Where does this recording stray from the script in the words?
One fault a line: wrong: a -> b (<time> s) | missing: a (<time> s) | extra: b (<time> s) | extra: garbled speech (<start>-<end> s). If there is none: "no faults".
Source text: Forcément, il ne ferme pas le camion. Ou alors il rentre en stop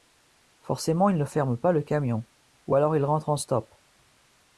no faults